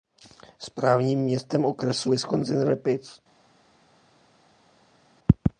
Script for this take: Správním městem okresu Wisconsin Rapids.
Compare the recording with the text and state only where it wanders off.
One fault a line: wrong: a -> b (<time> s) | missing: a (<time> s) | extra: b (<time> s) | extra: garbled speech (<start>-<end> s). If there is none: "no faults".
no faults